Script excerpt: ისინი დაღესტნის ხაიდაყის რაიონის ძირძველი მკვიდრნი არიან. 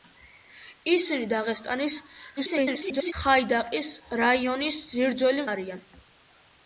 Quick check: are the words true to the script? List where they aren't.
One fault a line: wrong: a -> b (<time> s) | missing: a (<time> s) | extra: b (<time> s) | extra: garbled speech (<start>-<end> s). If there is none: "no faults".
extra: garbled speech (2.4-3.1 s)
missing: მკვიდრნი (5.5 s)